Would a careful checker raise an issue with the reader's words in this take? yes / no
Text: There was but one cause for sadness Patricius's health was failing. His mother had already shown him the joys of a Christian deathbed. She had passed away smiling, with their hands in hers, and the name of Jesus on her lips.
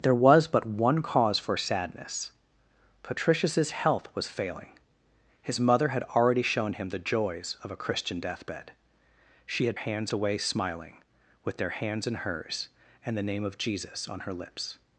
yes